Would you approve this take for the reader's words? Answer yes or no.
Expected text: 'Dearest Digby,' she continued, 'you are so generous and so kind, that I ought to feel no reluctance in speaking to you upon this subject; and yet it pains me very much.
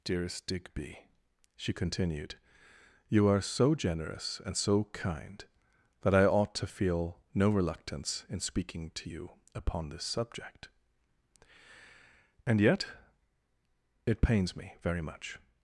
yes